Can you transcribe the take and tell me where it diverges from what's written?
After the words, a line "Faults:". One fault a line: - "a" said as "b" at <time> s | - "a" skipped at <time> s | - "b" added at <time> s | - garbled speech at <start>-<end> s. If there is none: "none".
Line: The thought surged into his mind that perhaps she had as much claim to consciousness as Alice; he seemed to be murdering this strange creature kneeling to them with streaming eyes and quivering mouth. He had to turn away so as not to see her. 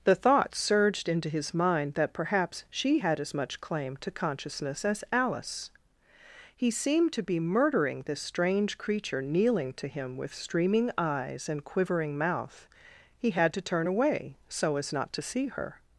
The thought surged into his mind that perhaps she had as much claim to consciousness as Alice; he seemed to be murdering this strange creature kneeling to him with streaming eyes and quivering mouth. He had to turn away so as not to see her.
Faults:
- "them" said as "him" at 9.9 s